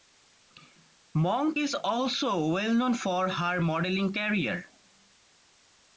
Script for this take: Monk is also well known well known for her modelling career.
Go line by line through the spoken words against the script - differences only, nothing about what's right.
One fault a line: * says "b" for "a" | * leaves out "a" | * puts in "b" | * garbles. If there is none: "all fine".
* leaves out "well known"